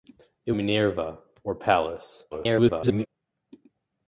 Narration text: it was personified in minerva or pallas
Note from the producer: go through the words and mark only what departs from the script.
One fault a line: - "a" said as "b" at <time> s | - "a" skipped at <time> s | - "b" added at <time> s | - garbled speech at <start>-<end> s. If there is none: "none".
- "was personified in" skipped at 0.5 s
- garbled speech at 2.3-3.1 s